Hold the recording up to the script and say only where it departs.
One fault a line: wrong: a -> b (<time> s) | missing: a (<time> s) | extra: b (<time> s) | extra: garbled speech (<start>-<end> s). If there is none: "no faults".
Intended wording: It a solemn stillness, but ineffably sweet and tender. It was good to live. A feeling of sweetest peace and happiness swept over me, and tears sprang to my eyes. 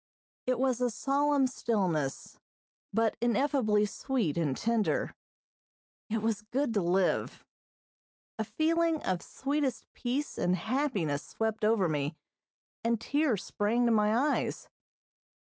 extra: was (0.6 s)